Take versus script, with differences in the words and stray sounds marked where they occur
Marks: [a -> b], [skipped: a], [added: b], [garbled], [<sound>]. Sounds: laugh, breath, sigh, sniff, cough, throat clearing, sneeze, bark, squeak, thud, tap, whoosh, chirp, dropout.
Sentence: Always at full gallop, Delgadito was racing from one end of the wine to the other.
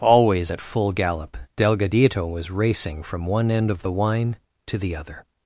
Always at full gallop, Delgadito was racing from one end of the wine to the other.